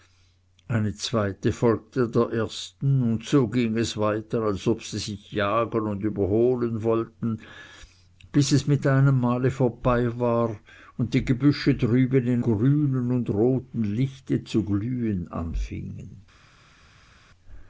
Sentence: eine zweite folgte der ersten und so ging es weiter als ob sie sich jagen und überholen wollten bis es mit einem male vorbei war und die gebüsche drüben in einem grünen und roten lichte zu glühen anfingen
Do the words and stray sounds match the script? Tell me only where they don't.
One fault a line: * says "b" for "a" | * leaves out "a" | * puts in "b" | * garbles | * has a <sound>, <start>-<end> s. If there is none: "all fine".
* leaves out "einem"